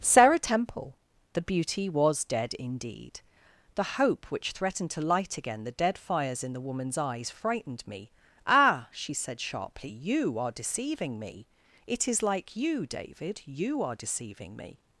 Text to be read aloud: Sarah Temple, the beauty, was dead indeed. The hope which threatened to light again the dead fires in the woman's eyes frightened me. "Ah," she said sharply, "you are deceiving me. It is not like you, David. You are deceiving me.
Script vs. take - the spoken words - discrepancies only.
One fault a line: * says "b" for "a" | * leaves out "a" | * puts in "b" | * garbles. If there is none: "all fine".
* leaves out "not"